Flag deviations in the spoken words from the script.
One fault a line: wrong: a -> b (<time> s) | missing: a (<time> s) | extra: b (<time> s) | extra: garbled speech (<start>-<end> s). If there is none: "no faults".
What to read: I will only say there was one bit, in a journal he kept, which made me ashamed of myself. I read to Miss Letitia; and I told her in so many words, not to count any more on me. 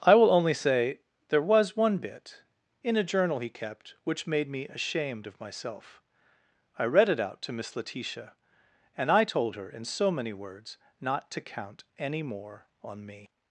extra: it out (7.1 s)